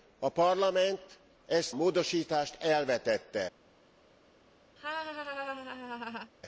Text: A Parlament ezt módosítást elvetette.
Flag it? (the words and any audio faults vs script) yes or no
yes